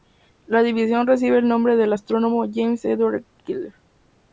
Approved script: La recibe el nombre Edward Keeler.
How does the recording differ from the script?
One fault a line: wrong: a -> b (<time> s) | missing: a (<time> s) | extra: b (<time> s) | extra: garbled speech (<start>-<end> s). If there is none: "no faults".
extra: división (0.6 s)
extra: del astrónomo James (1.8 s)